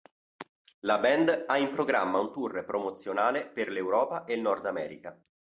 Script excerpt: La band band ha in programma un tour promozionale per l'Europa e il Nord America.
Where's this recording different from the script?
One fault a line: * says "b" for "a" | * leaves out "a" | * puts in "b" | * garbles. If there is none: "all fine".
* leaves out "band"